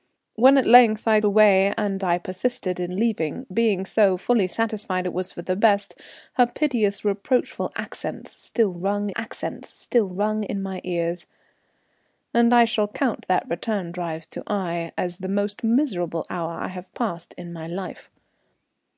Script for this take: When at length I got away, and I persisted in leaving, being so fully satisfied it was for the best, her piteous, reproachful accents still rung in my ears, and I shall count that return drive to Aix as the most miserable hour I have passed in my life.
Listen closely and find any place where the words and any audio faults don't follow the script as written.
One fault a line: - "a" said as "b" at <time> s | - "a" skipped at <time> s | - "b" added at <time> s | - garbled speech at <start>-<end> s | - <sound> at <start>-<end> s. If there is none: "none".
- "got" skipped at 1.2 s
- "accents still rung" added at 9.2 s